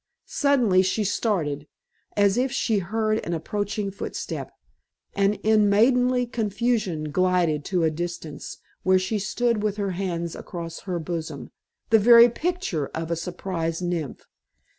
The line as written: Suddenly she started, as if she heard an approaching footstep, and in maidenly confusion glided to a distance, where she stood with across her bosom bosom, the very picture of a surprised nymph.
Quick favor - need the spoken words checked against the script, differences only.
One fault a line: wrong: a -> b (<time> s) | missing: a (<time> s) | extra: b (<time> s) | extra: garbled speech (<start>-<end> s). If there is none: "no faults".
extra: her hands (9.8 s)
missing: bosom (11.5 s)